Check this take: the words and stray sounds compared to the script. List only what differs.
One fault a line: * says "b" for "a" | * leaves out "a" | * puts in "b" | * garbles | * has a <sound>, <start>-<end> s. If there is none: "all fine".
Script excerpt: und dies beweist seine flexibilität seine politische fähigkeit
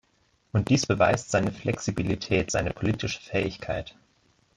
all fine